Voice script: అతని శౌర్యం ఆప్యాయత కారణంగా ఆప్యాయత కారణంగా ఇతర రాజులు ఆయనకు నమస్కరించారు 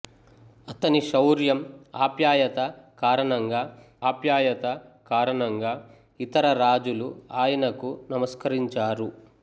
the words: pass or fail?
pass